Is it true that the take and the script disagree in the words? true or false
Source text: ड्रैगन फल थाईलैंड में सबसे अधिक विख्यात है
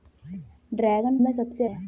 true